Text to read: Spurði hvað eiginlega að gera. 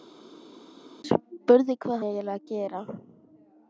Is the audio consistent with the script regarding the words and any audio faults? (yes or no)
yes